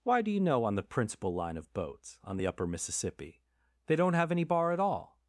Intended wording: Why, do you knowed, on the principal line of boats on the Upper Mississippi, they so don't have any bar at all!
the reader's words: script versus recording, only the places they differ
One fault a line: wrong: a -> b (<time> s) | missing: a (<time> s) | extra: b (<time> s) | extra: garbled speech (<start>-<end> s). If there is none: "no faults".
wrong: knowed -> know (0.4 s)
missing: so (4.0 s)